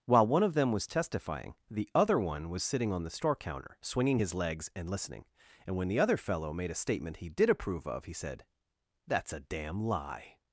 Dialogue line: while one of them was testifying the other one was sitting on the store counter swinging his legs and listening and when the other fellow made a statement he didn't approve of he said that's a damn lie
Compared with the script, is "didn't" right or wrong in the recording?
wrong